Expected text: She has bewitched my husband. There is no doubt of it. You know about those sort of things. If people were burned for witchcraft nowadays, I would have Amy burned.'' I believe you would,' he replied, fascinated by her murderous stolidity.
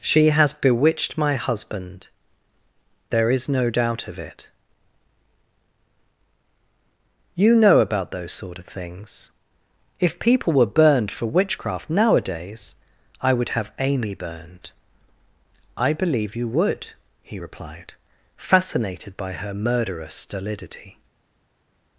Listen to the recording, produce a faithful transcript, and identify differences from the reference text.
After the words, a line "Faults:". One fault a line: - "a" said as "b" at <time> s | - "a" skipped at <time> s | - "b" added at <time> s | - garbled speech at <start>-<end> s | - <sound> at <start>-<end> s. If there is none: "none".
She has bewitched my husband. There is no doubt of it. You know about those sort of things. If people were burned for witchcraft nowadays, I would have Amy burned.'' I believe you would,' he replied, fascinated by her murderous stolidity.
Faults:
none